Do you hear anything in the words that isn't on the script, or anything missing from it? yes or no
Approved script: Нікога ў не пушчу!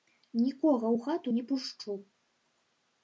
yes